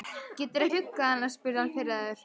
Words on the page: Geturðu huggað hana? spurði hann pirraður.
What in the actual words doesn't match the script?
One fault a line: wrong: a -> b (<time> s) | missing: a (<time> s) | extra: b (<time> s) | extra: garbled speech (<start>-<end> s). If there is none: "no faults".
no faults